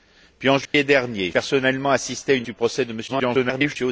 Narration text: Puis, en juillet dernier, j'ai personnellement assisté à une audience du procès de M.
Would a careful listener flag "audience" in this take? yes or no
yes